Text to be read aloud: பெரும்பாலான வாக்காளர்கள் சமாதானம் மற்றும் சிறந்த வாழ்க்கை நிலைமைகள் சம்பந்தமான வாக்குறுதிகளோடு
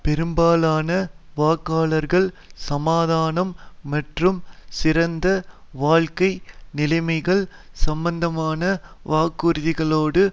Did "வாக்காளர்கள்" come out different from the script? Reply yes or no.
no